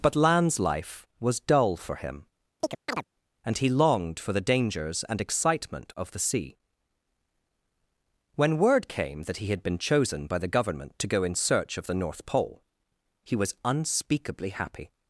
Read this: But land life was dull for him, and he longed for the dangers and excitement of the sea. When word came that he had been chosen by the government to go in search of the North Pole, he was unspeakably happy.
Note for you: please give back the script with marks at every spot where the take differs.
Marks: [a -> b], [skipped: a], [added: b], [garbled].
But [land -> lands] life was dull for him, and he longed for the dangers and excitement of the sea. When word came that he had been chosen by the government to go in search of the North Pole, he was unspeakably happy.